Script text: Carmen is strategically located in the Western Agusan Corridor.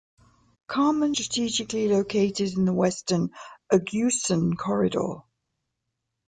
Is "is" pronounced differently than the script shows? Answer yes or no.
yes